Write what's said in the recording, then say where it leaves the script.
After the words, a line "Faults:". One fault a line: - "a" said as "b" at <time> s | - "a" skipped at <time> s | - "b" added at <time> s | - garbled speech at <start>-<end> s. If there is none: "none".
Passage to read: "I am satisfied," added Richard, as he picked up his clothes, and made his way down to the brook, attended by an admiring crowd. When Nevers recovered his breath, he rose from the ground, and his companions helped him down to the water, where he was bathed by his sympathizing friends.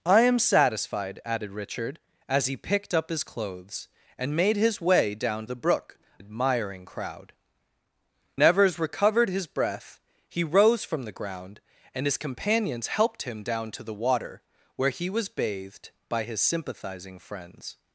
"I am satisfied," added Richard, as he picked up his clothes, and made his way down the brook, admiring crowd. Nevers recovered his breath, he rose from the ground, and his companions helped him down to the water, where he was bathed by his sympathizing friends.
Faults:
- "to" skipped at 5.5 s
- "attended by an" skipped at 6.0 s
- "When" skipped at 7.3 s